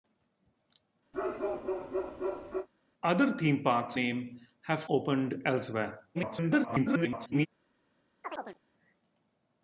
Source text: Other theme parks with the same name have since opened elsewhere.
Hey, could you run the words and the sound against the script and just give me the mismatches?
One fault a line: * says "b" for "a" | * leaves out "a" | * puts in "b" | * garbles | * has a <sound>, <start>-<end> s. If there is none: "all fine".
* has a bark, 1.1-2.7 s
* leaves out "with the same"
* leaves out "since"
* garbles
* has a chirp, 8.2-8.6 s